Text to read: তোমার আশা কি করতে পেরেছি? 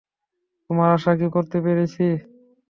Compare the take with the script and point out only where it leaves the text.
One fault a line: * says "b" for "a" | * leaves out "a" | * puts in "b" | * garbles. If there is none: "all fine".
all fine